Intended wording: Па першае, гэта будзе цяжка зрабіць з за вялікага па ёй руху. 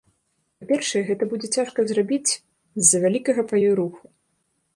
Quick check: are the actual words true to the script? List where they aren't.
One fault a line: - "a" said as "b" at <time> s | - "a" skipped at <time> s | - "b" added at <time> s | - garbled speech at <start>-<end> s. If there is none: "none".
none